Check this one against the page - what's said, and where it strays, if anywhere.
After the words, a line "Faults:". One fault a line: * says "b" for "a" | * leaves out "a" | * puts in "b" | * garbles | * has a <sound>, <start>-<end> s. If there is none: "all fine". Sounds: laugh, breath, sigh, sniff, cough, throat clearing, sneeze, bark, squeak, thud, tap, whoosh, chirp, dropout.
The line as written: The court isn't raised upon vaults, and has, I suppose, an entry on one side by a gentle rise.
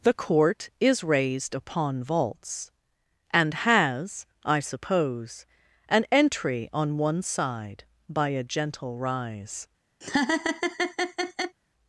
The court is raised upon vaults, and has, I suppose, an entry on one side by a gentle rise.
Faults:
* says "is" for "isn't"
* has a laugh, 10.0-11.6 s